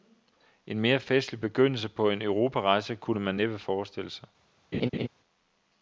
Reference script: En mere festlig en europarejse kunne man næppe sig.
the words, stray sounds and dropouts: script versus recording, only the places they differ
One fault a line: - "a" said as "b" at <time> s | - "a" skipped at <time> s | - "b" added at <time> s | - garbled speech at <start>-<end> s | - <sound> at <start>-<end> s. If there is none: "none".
- "begyndelse på" added at 1.4 s
- "forestille" added at 3.6 s
- laugh at 4.7-5.1 s